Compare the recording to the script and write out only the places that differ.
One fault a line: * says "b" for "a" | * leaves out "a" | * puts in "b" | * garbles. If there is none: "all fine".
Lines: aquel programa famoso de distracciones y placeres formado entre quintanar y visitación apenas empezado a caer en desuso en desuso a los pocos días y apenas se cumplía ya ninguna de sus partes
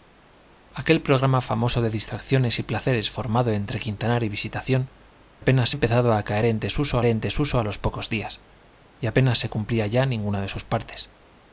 all fine